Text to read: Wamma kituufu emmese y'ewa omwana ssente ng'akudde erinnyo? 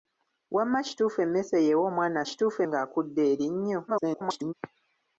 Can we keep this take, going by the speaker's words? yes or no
no